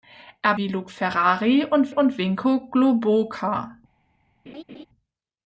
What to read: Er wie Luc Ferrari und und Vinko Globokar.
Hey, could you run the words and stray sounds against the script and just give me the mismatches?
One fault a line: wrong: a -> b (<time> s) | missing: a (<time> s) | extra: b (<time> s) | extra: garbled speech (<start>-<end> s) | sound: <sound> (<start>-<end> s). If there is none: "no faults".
sound: laugh (4.5-4.9 s)